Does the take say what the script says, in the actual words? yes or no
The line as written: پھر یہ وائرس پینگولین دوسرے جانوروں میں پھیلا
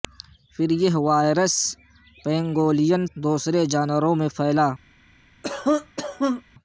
yes